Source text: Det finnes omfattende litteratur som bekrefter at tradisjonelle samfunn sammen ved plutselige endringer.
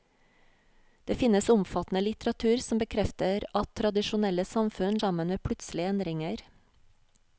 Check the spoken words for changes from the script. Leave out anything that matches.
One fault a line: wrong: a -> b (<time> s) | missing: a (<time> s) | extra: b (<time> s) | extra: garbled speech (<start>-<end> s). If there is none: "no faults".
no faults